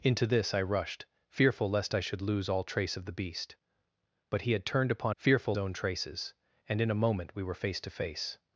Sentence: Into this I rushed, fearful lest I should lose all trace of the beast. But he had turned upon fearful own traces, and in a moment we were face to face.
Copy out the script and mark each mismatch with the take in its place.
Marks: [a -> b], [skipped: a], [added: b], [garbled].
Into this I rushed, fearful lest I should lose all trace of the beast. But he had turned upon fearful own traces, and in a moment we were face to face.